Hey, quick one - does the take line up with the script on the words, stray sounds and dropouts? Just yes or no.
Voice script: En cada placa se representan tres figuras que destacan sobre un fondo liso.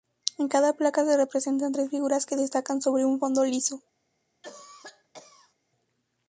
no